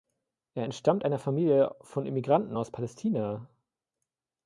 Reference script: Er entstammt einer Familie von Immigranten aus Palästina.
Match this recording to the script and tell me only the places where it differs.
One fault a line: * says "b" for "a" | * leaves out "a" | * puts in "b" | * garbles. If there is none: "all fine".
all fine